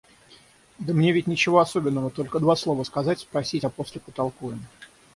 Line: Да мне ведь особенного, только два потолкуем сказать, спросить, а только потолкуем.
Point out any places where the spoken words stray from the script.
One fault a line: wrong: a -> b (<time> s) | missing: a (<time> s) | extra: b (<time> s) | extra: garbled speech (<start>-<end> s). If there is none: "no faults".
extra: ничего (1.3 s)
wrong: потолкуем -> слова (2.6 s)
wrong: только -> после (3.7 s)